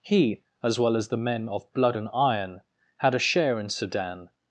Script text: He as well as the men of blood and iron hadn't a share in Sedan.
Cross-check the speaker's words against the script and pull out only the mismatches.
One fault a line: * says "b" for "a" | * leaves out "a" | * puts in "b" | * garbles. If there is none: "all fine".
* says "had" for "hadn't"